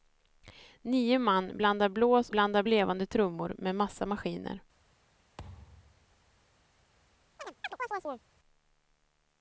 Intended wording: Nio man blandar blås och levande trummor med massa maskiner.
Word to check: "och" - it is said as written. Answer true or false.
false